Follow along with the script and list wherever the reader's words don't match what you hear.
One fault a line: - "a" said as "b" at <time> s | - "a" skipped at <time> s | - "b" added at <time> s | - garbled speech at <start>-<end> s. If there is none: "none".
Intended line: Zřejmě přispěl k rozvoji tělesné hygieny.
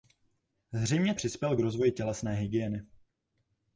none